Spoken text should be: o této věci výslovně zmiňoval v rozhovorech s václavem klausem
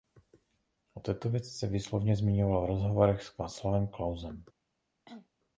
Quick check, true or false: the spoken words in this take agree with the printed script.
false